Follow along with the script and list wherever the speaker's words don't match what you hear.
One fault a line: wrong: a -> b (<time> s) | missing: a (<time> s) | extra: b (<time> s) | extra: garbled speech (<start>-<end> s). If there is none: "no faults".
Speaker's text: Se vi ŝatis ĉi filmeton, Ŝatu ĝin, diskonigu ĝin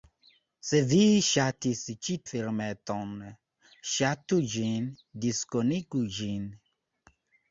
no faults